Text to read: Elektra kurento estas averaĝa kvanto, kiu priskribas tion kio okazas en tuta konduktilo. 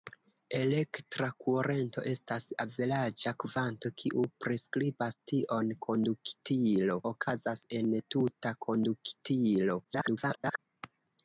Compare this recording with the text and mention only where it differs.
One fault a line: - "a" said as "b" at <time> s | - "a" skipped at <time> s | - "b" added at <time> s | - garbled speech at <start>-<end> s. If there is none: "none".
- "kio" said as "konduktilo" at 5.9 s
- garbled speech at 9.8-10.6 s